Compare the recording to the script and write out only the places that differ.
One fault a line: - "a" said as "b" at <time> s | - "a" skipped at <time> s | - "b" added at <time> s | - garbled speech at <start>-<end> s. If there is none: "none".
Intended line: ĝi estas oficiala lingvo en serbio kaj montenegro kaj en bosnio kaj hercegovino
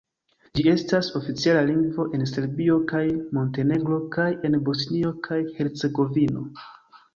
none